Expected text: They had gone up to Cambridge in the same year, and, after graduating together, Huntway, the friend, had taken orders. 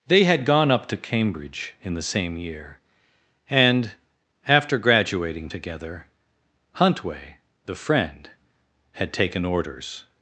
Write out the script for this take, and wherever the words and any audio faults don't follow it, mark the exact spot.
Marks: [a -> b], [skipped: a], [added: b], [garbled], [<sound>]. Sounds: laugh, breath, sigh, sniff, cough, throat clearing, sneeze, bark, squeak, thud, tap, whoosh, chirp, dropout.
They had gone up to Cambridge in the same year, and, after graduating together, Huntway, the friend, had taken orders.